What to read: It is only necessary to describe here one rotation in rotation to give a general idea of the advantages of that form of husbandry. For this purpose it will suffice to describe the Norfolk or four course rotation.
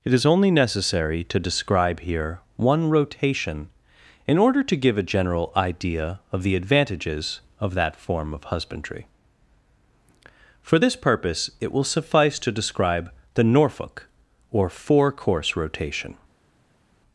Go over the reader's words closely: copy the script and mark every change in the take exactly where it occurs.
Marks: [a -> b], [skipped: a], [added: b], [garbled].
It is only necessary to describe here one rotation in [rotation -> order] to give a general idea of the advantages of that form of husbandry. For this purpose it will suffice to describe the Norfolk or four course rotation.